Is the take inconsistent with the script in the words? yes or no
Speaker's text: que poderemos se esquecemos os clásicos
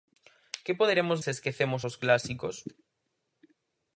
no